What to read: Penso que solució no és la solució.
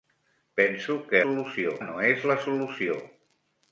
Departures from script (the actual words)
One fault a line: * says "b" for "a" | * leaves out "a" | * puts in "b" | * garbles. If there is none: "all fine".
all fine